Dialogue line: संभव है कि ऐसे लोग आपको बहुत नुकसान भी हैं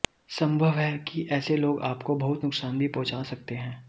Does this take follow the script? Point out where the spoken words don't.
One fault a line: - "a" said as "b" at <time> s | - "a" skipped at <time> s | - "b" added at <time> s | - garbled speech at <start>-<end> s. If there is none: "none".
- "पहुंचा सकते" added at 2.9 s